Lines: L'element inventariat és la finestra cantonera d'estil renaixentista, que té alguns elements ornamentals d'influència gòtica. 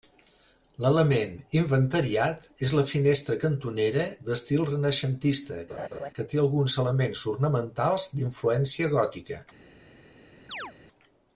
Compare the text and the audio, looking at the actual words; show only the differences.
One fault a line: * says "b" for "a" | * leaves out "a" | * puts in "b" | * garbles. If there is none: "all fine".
all fine